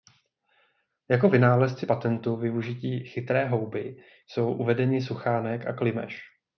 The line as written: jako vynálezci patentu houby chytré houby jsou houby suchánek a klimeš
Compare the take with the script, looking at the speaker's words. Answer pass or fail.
fail